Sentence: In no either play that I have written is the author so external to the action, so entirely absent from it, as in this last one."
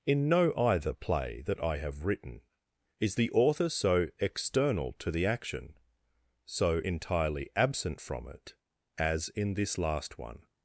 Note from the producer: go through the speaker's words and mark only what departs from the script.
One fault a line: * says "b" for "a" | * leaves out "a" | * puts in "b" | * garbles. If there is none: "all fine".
all fine